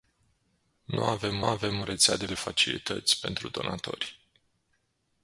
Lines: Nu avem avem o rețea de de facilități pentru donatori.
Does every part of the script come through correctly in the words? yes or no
yes